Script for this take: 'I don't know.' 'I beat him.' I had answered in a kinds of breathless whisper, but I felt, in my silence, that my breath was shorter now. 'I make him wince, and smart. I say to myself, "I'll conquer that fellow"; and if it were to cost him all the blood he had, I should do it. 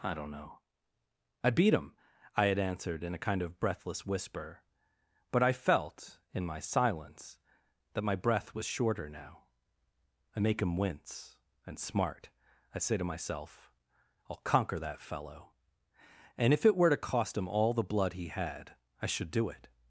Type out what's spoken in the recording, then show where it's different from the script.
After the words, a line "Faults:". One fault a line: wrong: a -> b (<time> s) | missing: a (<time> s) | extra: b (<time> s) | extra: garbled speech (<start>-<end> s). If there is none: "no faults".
'I don't know.' 'I beat him.' I had answered in a kind of breathless whisper, but I felt, in my silence, that my breath was shorter now. 'I make him wince, and smart. I say to myself, "I'll conquer that fellow"; and if it were to cost him all the blood he had, I should do it.
Faults:
wrong: kinds -> kind (3.2 s)